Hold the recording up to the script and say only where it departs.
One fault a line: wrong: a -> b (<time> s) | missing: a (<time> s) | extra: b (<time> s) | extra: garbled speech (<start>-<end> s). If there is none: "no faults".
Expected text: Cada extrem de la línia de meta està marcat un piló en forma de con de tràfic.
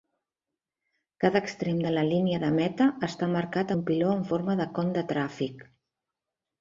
no faults